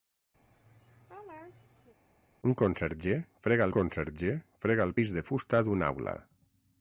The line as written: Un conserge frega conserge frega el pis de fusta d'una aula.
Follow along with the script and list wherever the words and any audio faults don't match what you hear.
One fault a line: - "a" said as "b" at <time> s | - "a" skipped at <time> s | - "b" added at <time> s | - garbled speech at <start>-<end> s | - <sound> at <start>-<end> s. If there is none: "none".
- laugh at 0.4-2.0 s